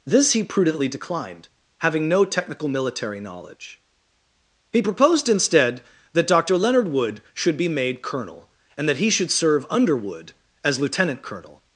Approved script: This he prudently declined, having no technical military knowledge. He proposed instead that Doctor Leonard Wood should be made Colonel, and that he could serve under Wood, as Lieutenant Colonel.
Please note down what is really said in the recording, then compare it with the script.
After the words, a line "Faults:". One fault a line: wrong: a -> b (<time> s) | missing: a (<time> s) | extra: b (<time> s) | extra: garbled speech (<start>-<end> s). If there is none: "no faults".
This he prudently declined, having no technical military knowledge. He proposed instead that Doctor Leonard Wood should be made Colonel, and that he should serve under Wood, as Lieutenant Colonel.
Faults:
wrong: could -> should (9.1 s)